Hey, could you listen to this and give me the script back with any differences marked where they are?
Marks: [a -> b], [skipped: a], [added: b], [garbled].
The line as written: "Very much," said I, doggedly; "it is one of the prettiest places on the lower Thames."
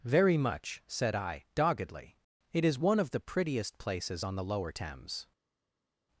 "Very much," said I, doggedly; "it is one of the prettiest places on the lower Thames."